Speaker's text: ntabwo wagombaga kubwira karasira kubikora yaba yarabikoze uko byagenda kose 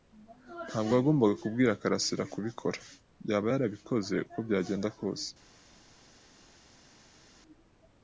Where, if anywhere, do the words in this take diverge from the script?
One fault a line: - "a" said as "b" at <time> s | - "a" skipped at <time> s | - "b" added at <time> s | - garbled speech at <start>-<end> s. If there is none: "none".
none